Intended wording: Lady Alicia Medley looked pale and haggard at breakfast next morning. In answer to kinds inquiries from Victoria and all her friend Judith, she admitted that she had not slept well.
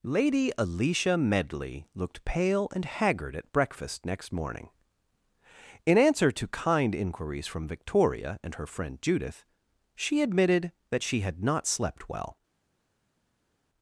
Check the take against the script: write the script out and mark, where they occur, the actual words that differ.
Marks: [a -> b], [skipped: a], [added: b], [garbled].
Lady Alicia Medley looked pale and haggard at breakfast next morning. In answer to [kinds -> kind] inquiries from Victoria and [skipped: all] her friend Judith, she admitted that she had not slept well.